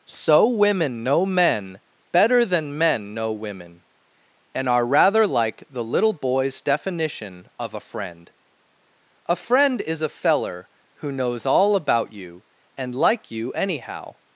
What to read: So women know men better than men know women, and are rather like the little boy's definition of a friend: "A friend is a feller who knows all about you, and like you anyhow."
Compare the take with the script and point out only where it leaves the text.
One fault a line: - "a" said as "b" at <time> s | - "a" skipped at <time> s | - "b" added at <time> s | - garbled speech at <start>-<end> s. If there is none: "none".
none